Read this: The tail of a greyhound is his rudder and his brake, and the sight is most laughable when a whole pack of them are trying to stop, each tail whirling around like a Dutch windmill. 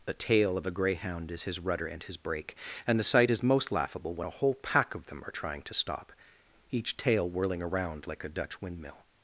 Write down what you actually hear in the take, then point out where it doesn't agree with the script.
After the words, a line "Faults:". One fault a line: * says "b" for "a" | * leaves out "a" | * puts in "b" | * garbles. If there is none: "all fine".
The tail of a greyhound is his rudder and his brake, and the sight is most laughable when a whole pack of them are trying to stop, each tail whirling around like a Dutch windmill.
Faults:
all fine